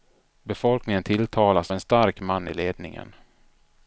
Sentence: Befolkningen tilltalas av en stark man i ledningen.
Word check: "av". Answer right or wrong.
wrong